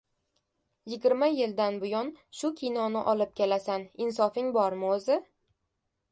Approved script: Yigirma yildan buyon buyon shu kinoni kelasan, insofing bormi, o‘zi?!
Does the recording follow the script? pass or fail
fail